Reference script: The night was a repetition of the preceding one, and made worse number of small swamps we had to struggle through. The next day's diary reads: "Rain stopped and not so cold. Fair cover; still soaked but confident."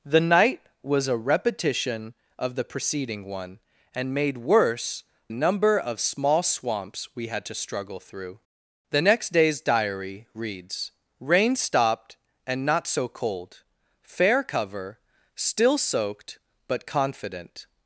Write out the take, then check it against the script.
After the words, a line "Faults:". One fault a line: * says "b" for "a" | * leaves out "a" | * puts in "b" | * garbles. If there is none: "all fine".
The night was a repetition of the preceding one, and made worse number of small swamps we had to struggle through. The next day's diary reads: "Rain stopped and not so cold. Fair cover; still soaked but confident."
Faults:
all fine